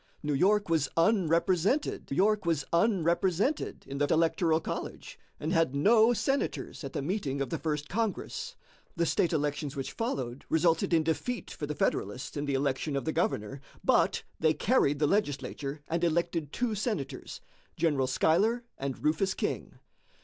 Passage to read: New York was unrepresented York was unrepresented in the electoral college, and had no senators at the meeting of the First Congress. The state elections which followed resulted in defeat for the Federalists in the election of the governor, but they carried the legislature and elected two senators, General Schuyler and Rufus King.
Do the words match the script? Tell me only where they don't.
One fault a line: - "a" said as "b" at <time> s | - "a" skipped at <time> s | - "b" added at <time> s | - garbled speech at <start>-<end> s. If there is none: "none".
none